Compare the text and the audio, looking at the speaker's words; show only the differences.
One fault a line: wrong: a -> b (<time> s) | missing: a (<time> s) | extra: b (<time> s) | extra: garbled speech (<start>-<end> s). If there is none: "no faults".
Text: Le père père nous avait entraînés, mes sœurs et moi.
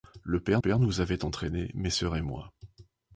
no faults